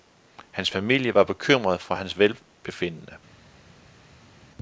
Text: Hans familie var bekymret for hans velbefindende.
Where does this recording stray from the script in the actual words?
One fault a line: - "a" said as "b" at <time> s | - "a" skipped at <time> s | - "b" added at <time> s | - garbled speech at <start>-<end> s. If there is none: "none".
none